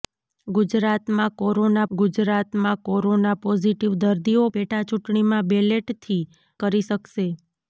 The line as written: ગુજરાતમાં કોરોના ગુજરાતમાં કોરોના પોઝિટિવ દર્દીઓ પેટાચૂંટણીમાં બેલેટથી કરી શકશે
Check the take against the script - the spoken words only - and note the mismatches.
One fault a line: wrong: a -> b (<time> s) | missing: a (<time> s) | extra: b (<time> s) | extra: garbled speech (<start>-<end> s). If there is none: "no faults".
no faults